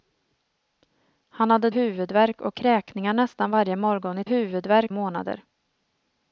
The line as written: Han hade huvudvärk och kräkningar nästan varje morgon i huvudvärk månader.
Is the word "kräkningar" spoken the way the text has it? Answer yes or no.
yes